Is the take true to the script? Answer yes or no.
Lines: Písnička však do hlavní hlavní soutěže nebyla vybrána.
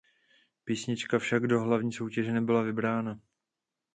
no